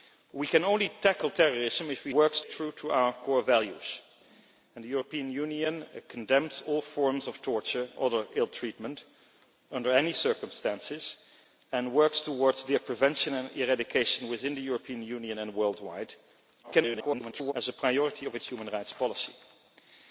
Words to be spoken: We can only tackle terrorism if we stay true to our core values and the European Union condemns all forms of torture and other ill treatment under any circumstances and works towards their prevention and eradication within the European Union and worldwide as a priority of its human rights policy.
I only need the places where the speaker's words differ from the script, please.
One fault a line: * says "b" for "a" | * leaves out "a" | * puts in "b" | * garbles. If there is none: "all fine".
* says "works" for "stay"
* leaves out "and"
* garbles